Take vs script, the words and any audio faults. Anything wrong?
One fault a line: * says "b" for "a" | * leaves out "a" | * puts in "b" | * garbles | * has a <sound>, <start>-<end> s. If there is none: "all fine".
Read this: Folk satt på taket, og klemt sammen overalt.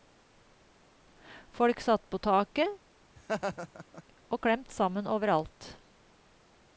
* has a laugh, 3.2-4.0 s